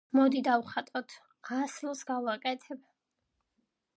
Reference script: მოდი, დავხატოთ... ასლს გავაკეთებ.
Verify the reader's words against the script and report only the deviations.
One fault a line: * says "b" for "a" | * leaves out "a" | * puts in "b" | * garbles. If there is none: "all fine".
all fine